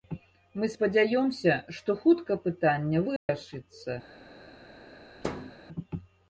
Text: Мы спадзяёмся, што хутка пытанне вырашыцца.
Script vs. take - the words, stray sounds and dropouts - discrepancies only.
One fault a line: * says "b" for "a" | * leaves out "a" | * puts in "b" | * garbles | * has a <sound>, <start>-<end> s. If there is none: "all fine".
* has a dropout, 3.2-3.3 s
* has a thud, 5.2-5.6 s